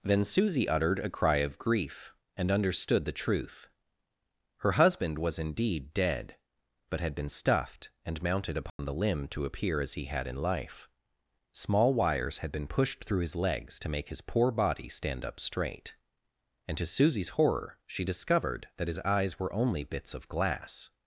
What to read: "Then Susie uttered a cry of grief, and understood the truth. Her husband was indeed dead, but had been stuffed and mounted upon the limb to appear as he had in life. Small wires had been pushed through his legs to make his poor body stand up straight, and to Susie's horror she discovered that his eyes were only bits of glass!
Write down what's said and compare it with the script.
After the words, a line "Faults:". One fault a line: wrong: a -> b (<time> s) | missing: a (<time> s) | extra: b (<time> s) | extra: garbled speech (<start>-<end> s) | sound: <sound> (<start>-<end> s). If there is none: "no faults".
"Then Susie uttered a cry of grief, and understood the truth. Her husband was indeed dead, but had been stuffed and mounted upon the limb to appear as he had in life. Small wires had been pushed through his legs to make his poor body stand up straight, and to Susie's horror she discovered that his eyes were only bits of glass!
Faults:
sound: dropout (8.7-8.8 s)